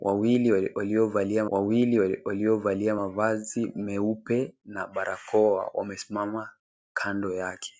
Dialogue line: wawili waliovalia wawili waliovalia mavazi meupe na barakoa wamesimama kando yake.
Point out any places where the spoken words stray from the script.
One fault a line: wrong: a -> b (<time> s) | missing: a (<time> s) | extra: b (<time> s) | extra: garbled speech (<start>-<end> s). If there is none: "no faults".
no faults